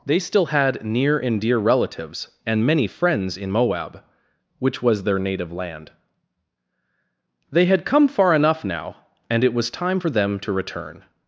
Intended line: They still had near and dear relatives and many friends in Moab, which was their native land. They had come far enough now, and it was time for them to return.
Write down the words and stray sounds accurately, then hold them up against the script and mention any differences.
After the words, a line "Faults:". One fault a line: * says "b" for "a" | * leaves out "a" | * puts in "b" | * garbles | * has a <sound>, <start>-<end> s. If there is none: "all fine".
They still had near and dear relatives and many friends in Moab, which was their native land. They had come far enough now, and it was time for them to return.
Faults:
all fine